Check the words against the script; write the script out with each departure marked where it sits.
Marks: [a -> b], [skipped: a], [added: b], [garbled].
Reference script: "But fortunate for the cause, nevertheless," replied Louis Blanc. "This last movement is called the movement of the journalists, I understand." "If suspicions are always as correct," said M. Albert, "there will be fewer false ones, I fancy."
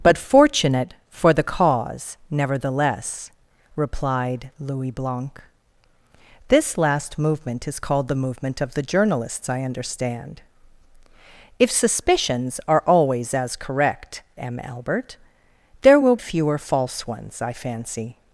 "But fortunate for the cause, nevertheless," replied Louis Blanc. "This last movement is called the movement of the journalists, I understand." "If suspicions are always as correct," [skipped: said] M. Albert, "there will [skipped: be] fewer false ones, I fancy."